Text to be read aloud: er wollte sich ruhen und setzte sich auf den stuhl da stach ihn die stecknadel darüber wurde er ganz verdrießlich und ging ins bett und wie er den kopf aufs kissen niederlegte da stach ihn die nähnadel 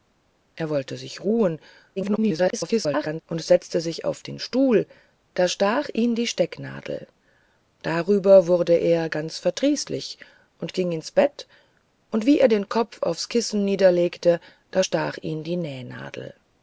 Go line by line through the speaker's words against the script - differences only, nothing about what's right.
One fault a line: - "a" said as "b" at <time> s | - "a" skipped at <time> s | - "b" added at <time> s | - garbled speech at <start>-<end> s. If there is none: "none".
- garbled speech at 2.0-3.2 s